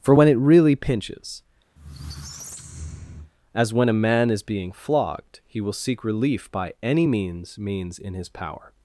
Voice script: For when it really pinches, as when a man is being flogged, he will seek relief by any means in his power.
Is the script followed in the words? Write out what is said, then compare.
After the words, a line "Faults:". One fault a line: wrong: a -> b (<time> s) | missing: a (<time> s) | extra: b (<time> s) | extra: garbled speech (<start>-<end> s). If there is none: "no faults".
For when it really pinches, as when a man is being flogged, he will seek relief by any means means in his power.
Faults:
extra: means (7.6 s)